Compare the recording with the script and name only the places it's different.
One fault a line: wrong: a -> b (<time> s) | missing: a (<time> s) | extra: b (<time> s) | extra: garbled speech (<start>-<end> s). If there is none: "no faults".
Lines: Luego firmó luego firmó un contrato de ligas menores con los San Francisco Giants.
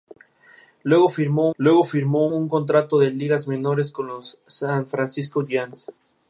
no faults